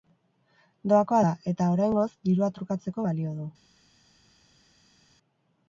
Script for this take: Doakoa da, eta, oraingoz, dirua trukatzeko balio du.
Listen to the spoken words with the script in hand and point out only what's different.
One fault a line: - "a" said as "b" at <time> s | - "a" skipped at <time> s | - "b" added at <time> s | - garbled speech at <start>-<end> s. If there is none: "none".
none